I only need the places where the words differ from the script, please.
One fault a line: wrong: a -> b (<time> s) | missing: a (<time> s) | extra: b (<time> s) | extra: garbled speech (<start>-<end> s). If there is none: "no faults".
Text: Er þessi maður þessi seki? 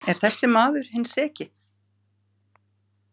wrong: þessi -> hinn (0.9 s)